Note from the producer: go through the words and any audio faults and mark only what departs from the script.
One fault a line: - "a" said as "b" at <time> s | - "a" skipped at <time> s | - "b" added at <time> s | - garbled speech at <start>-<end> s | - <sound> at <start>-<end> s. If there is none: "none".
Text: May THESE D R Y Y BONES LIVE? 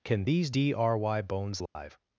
- "May" said as "CAN" at 0.0 s
- "Y" skipped at 1.2 s
- dropout at 1.7-1.8 s